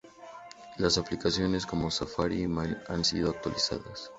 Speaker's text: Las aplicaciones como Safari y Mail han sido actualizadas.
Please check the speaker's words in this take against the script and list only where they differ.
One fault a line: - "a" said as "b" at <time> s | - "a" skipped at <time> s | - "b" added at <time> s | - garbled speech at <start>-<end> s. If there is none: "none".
none